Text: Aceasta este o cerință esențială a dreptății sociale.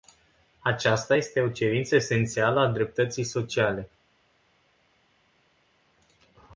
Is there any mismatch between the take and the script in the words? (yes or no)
no